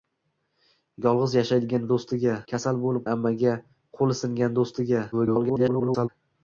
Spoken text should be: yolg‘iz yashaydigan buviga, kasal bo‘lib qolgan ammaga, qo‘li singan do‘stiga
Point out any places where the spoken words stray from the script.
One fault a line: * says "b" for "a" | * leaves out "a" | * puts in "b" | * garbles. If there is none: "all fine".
* says "do‘stiga" for "buviga"
* leaves out "qolgan"
* garbles